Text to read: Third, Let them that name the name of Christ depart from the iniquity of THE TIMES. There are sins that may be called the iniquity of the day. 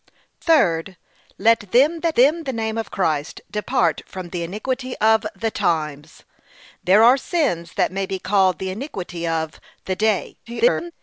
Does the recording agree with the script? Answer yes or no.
no